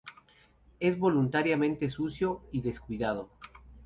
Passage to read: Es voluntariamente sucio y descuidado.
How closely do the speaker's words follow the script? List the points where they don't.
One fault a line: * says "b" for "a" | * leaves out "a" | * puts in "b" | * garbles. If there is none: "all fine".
all fine